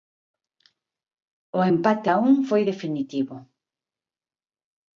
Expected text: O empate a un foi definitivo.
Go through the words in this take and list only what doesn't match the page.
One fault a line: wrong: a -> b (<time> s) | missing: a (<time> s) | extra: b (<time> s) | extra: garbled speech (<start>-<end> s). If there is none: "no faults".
no faults